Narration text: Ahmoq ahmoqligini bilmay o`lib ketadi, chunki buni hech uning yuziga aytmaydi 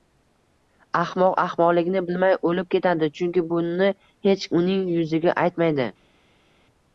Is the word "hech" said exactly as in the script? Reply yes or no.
yes